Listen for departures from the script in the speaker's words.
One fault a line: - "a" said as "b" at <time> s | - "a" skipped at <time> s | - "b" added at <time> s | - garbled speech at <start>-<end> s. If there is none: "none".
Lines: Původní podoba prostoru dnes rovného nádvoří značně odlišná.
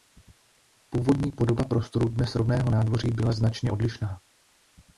- "byla" added at 3.1 s